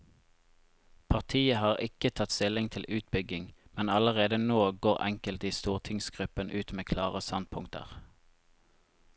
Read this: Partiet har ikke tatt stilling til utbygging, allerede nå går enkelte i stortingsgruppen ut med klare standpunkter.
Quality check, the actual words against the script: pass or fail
fail